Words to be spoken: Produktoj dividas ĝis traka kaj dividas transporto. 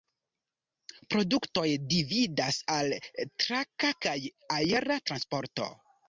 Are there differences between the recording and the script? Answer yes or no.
yes